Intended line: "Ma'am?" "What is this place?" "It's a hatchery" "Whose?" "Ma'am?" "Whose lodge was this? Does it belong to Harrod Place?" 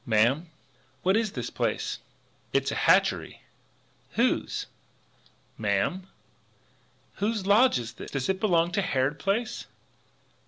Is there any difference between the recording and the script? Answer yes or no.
yes